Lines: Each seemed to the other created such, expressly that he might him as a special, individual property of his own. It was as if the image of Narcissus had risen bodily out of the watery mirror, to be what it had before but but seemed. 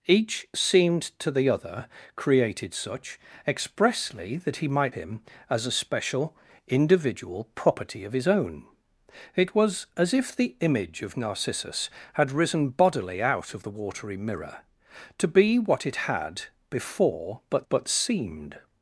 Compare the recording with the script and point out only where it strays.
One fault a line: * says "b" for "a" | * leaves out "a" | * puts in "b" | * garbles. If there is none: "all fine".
all fine